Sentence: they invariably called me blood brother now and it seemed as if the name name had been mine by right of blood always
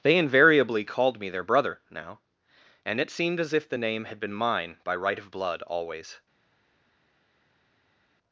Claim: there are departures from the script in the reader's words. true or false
true